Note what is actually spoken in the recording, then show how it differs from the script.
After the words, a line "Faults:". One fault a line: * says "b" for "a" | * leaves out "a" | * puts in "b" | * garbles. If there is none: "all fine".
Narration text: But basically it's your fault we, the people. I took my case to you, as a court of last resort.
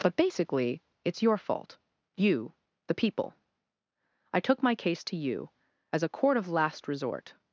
But basically it's your fault you, the people. I took my case to you, as a court of last resort.
Faults:
* says "you" for "we"